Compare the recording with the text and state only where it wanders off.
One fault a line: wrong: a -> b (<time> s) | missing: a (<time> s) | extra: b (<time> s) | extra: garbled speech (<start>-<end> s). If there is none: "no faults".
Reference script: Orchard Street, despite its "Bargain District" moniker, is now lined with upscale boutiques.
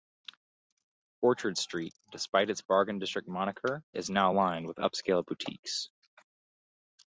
no faults